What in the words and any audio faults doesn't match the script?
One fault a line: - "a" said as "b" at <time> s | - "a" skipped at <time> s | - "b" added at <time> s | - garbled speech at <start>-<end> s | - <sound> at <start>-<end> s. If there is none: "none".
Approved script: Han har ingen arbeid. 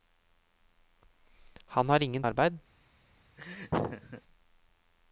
- laugh at 3.4-4.2 s